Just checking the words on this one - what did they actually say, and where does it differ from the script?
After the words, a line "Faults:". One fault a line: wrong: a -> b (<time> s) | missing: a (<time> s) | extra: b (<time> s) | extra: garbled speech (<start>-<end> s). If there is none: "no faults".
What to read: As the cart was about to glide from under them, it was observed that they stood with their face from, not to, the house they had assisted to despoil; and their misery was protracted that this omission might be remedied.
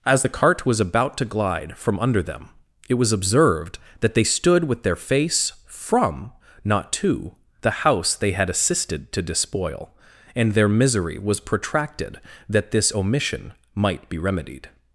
As the cart was about to glide from under them, it was observed that they stood with their face from, not to, the house they had assisted to despoil; and their misery was protracted that this omission might be remedied.
Faults:
no faults